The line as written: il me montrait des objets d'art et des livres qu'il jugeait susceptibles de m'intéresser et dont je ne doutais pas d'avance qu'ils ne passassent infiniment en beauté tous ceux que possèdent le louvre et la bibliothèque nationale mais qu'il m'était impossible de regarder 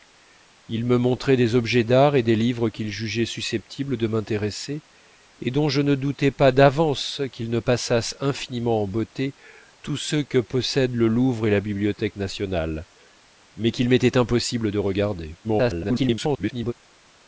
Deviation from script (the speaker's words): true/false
true